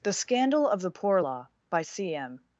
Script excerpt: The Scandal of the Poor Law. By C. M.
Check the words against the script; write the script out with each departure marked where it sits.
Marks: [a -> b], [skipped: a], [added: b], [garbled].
The Scandal of the Poor Law. By C. M.